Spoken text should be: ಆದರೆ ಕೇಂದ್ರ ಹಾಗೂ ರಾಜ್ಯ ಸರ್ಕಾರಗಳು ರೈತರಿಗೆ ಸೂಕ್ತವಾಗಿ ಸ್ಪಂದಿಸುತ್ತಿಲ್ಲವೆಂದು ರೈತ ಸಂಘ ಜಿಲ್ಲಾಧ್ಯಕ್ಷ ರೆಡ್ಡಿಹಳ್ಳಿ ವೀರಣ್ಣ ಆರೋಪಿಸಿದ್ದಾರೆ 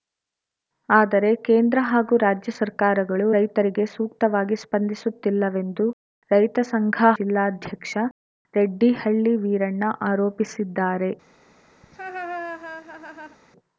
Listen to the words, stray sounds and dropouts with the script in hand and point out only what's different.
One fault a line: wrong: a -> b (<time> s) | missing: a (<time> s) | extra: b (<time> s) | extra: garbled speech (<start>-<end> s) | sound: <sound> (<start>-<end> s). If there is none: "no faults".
sound: laugh (11.8-13.4 s)